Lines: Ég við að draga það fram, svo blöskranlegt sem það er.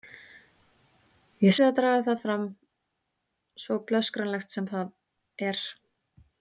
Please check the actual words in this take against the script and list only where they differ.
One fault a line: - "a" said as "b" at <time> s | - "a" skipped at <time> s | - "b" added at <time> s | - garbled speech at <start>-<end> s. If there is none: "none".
none